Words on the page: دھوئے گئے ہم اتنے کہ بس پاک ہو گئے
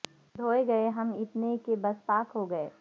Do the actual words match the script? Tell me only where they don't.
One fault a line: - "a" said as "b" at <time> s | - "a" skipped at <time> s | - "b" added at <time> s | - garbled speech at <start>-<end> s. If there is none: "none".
none